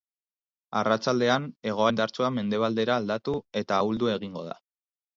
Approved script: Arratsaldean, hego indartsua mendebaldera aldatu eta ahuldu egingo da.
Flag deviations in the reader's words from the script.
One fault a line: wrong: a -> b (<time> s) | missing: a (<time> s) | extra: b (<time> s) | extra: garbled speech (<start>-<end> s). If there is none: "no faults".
no faults